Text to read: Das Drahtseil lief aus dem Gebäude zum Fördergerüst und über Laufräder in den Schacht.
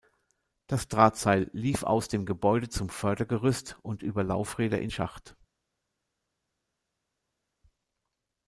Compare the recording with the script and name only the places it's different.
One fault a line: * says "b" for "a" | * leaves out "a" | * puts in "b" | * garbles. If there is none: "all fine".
* leaves out "den"